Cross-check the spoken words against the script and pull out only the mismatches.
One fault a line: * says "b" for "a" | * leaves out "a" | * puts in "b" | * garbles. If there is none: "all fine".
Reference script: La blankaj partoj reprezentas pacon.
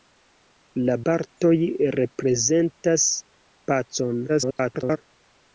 * leaves out "blankaj"
* garbles